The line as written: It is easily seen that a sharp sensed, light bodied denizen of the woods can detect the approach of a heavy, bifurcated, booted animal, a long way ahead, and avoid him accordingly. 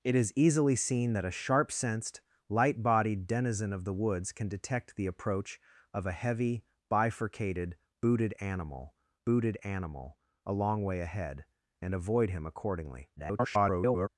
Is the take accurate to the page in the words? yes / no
no